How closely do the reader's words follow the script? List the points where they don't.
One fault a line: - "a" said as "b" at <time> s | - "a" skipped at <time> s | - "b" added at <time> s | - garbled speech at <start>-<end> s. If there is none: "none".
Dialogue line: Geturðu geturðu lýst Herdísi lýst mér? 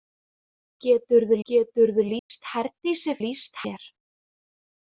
none